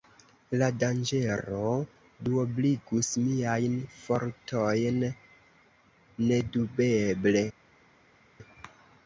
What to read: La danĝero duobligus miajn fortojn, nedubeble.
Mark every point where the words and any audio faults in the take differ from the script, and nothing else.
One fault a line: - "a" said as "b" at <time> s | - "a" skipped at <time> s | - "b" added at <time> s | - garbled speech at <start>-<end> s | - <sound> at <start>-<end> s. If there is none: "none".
none